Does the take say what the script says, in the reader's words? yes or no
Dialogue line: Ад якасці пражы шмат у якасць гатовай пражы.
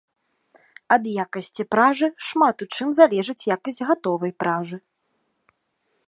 no